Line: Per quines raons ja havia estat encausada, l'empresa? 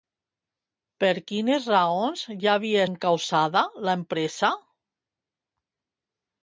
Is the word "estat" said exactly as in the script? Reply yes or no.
no